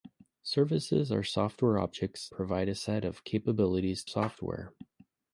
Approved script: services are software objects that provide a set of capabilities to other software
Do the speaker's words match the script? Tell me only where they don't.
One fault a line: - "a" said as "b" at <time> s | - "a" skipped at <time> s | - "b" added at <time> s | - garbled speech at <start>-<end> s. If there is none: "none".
- "that" skipped at 2.3 s
- "to other" skipped at 4.0 s